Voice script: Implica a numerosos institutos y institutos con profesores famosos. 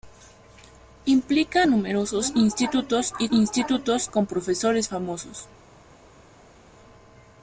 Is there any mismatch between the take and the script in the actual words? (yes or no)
no